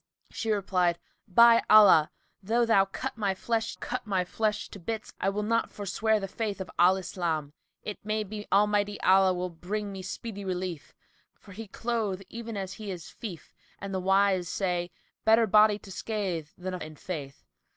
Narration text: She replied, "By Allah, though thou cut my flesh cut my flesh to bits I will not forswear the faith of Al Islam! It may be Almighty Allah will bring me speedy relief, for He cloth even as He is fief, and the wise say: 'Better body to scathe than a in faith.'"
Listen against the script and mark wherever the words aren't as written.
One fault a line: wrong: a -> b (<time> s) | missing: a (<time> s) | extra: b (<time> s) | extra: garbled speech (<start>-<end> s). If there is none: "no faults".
no faults